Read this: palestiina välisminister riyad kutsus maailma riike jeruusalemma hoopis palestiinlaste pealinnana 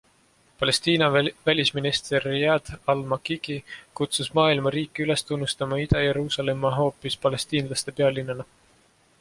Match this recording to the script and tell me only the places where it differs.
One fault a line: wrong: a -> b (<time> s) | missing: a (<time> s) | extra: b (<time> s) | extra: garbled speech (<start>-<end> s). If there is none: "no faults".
extra: al makiki (2.9 s)
extra: üles tunnustama ida (5.0 s)